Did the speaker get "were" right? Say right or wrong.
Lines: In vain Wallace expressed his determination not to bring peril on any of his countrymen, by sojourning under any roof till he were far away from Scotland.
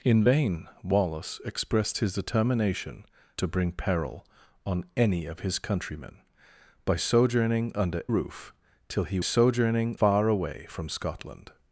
wrong